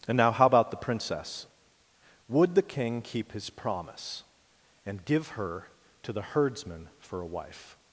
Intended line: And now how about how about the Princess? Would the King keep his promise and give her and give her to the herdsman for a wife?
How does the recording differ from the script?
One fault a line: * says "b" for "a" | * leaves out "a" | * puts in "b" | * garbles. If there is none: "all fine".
* leaves out "how about"
* leaves out "and give her"